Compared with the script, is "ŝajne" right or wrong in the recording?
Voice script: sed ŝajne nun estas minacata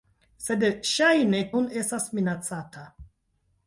right